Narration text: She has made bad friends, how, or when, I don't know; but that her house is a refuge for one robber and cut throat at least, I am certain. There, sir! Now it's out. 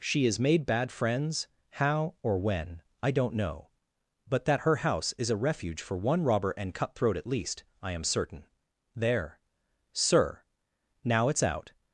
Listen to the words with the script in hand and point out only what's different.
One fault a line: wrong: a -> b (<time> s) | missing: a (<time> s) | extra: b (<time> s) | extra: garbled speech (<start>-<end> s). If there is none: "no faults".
no faults